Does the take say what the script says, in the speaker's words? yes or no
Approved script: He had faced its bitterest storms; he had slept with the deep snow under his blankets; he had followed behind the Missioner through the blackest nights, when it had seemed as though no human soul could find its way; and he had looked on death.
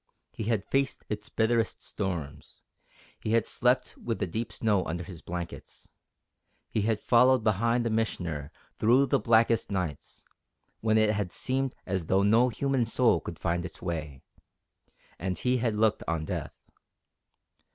yes